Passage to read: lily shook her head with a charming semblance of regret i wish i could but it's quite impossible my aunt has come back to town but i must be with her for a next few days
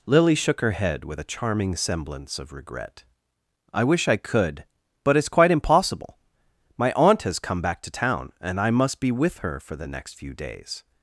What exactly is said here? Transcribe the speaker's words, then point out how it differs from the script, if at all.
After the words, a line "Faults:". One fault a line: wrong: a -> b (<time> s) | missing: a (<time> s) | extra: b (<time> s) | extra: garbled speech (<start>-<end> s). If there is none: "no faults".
lily shook her head with a charming semblance of regret i wish i could but it's quite impossible my aunt has come back to town and i must be with her for the next few days
Faults:
wrong: but -> and (8.4 s)
wrong: a -> the (9.7 s)